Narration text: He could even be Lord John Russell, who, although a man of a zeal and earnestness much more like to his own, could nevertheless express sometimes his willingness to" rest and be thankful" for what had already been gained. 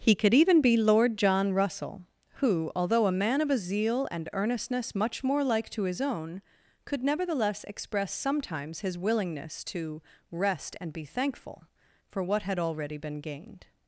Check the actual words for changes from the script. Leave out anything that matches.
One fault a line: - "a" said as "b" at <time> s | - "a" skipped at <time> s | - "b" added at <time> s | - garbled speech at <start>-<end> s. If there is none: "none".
none